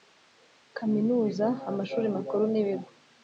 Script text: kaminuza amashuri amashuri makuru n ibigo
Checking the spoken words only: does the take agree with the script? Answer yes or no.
no